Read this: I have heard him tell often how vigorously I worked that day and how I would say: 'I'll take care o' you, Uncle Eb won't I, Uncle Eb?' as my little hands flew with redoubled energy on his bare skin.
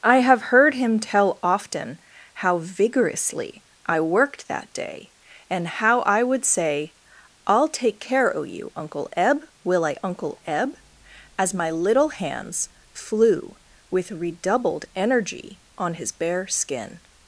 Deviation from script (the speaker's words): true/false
true